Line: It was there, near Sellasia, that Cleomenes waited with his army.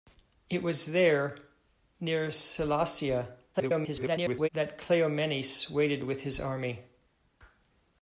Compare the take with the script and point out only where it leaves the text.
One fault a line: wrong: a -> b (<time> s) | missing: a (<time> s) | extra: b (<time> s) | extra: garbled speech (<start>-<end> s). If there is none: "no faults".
extra: garbled speech (3.5-4.5 s)